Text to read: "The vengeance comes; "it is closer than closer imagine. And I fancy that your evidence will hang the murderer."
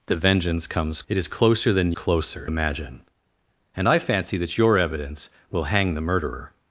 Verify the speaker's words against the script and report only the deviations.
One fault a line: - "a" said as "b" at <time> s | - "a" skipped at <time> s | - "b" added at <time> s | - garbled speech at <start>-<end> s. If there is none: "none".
none